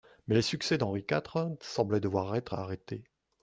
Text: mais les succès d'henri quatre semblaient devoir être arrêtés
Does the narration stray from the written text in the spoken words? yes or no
no